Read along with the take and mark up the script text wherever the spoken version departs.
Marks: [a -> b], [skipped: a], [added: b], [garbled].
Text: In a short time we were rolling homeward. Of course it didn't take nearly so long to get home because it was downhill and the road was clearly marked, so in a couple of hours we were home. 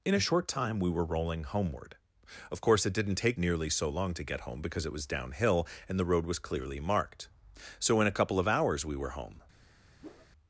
In a short time we were rolling homeward. Of course it didn't take nearly so long to get home because it was downhill and the road was clearly marked, so in a couple of hours we were home.